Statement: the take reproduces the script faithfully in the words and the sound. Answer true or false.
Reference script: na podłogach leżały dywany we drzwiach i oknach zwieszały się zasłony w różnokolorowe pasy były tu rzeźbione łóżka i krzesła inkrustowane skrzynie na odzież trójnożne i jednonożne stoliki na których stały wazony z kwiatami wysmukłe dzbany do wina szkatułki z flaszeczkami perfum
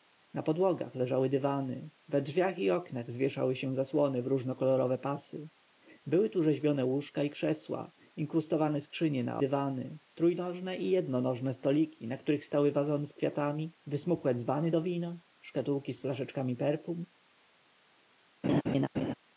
false